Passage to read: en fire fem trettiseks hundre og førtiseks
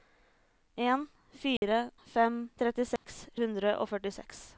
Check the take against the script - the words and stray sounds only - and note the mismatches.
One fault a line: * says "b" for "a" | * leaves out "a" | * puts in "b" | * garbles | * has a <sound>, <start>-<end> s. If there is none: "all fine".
* has a dropout, 1.6-1.6 s
* has a dropout, 3.0-3.0 s